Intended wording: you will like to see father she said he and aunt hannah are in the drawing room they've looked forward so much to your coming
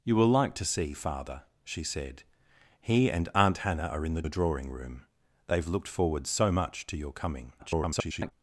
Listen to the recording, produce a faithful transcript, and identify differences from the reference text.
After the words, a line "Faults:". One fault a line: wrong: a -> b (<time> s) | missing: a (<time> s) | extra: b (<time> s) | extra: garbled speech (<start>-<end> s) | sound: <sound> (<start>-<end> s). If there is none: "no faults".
you will like to see father she said he and aunt hannah are in the the drawing room they've looked forward so much to your coming [garbled]
Faults:
extra: the (4.2 s)
extra: garbled speech (7.6-8.3 s)